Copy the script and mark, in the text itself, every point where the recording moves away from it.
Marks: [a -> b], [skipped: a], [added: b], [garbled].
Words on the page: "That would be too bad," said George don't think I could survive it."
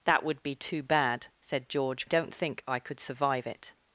"That would be too bad," said George don't think I could survive it."